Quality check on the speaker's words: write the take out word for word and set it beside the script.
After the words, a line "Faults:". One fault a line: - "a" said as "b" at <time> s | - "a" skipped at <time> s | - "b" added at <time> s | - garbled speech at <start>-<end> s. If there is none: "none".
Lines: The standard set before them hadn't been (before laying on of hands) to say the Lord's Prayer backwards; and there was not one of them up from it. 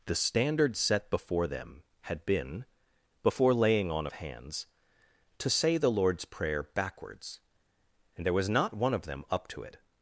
The standard set before them had been (before laying on of hands) to say the Lord's Prayer backwards; and there was not one of them up to it.
Faults:
- "hadn't" said as "had" at 2.0 s
- "from" said as "to" at 9.5 s